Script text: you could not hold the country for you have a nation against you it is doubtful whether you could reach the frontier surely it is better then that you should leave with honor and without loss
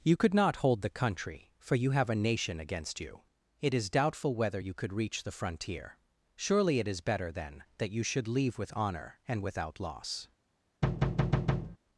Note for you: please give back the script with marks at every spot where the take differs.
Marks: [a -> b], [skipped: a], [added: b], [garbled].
you could not hold the country for you have a nation against you it is doubtful whether you could reach the frontier surely it is better then that you should leave with honor and without loss